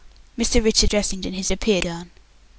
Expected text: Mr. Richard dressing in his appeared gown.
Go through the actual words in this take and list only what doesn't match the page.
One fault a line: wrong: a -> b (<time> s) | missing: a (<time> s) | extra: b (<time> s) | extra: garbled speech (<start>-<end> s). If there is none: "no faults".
no faults